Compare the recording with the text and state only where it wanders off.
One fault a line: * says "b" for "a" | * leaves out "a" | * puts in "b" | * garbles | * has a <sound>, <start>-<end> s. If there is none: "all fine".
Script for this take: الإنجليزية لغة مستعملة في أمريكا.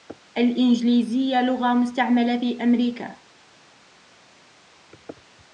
all fine